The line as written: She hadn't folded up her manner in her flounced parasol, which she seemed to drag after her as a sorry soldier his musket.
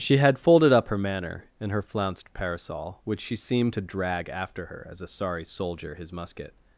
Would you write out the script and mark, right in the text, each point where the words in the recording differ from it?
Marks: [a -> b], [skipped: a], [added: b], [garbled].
She [hadn't -> had] folded up her manner in her flounced parasol, which she seemed to drag after her as a sorry soldier his musket.